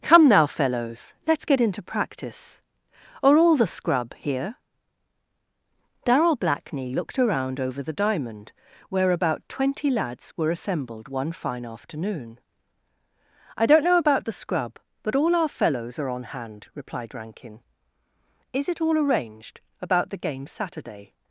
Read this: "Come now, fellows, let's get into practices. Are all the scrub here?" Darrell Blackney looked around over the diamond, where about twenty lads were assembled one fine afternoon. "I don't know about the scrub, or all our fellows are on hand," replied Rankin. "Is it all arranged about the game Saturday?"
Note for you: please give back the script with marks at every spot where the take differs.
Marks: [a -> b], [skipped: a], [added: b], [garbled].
"Come now, fellows, let's get into [practices. -> practice] Are all the scrub here?" Darrell Blackney looked around over the diamond, where about twenty lads were assembled one fine afternoon. "I don't know about the scrub, [or -> but] all our fellows are on hand," replied Rankin. "Is it all arranged about the game Saturday?"